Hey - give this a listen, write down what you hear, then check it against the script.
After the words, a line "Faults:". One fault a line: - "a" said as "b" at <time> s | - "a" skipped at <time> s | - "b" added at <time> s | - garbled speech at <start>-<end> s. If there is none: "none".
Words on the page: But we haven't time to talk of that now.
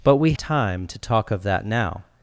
But we time to talk of that now.
Faults:
- "haven't" skipped at 0.3 s